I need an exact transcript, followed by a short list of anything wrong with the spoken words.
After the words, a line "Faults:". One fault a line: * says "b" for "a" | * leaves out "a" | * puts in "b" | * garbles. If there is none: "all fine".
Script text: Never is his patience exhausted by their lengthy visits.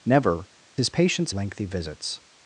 Never his patience lengthy visits.
Faults:
* leaves out "is"
* leaves out "exhausted by their"